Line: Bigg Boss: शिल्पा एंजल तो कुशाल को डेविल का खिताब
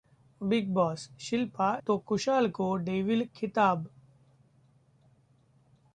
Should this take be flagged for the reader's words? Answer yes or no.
yes